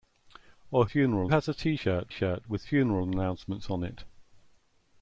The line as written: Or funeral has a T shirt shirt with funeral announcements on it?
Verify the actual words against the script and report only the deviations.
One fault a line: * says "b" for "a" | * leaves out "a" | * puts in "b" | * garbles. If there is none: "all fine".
all fine